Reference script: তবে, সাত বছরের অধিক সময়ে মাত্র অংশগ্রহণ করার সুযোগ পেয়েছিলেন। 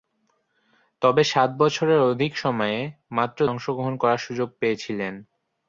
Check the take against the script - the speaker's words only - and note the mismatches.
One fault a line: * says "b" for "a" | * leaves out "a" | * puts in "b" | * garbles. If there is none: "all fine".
all fine